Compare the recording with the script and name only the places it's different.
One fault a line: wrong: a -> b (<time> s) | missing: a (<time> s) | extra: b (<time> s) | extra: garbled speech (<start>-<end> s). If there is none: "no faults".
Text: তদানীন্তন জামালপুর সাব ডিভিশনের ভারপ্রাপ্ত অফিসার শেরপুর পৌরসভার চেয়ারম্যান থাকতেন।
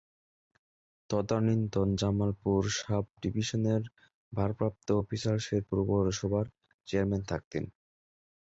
no faults